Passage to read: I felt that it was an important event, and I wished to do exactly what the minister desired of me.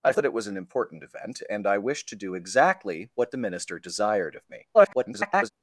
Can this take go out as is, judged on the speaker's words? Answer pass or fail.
fail